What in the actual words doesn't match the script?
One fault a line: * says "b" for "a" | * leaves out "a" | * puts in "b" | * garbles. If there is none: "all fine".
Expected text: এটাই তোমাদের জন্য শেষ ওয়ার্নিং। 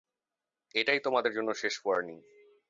all fine